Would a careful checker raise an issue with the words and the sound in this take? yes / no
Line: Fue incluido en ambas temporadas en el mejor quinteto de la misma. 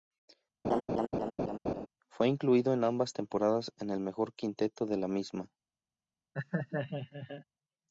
yes